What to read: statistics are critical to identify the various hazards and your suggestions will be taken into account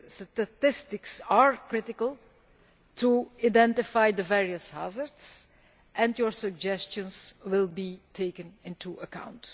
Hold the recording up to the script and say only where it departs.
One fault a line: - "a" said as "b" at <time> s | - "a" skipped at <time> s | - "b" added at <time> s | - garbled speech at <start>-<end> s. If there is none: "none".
none